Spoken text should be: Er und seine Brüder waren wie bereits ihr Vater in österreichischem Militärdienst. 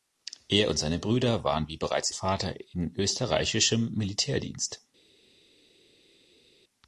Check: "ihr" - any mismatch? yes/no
yes